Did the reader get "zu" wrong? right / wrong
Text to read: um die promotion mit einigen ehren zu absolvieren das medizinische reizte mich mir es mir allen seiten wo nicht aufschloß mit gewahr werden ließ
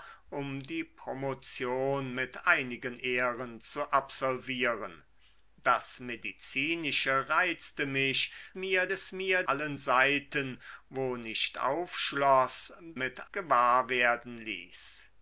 right